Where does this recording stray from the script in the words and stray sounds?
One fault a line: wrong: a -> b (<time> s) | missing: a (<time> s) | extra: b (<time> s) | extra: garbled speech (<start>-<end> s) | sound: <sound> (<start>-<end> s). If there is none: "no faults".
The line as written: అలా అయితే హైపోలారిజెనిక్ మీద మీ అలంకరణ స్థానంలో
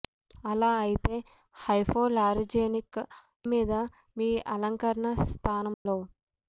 sound: dropout (5.7-5.9 s)